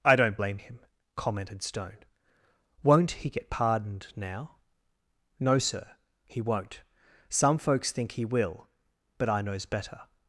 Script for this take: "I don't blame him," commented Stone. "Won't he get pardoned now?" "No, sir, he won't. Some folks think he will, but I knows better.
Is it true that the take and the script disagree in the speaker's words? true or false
false